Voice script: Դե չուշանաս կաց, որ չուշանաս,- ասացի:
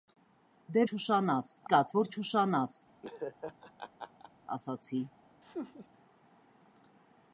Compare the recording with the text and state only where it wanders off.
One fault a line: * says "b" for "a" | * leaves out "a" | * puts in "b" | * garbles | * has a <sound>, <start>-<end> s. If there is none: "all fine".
* has a laugh, 3.0-4.3 s
* has a laugh, 5.4-5.9 s